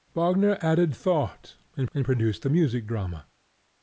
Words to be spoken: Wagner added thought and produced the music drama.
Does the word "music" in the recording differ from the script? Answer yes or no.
no